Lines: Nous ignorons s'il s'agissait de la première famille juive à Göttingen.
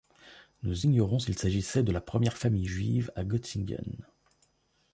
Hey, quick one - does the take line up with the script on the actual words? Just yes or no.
yes